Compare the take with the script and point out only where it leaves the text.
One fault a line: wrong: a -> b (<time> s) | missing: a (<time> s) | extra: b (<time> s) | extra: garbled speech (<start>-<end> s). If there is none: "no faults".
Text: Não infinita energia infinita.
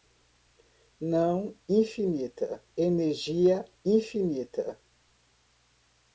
no faults